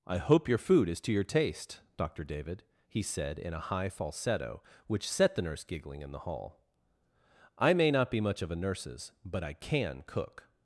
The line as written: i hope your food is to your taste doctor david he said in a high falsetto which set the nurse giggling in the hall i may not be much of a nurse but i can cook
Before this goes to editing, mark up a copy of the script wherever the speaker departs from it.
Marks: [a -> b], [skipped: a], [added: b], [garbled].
i hope your food is to your taste doctor david he said in a high falsetto which set the nurse giggling in the hall i may not be much of a [nurse -> nurses] but i can cook